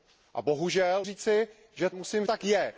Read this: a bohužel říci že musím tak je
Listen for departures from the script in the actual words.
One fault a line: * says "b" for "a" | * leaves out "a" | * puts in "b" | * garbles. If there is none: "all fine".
all fine